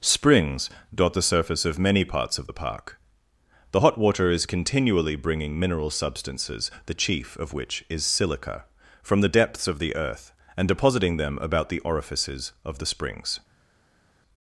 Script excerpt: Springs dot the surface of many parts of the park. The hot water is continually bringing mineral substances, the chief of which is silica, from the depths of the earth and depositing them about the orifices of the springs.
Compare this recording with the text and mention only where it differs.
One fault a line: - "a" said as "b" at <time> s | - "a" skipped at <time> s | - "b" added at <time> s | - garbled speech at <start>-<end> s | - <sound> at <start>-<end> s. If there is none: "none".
none